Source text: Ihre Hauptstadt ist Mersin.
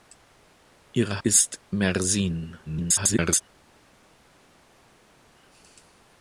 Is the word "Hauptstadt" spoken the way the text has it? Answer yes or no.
no